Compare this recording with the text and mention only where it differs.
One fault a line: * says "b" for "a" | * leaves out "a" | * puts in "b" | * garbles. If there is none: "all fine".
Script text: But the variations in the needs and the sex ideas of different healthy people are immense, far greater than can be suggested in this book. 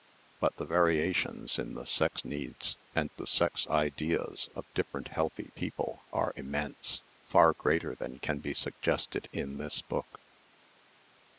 * puts in "sex"